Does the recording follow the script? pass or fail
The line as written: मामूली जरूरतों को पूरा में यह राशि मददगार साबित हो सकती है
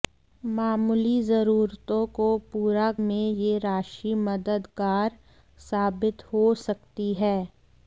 pass